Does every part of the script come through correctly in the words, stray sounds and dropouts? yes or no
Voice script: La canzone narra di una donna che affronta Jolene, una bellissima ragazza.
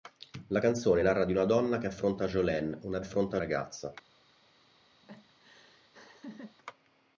no